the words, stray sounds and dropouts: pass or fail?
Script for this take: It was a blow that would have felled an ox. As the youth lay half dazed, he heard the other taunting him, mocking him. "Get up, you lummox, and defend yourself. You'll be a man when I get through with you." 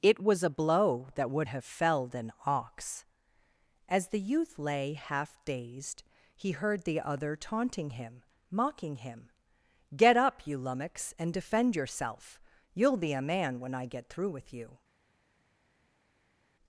pass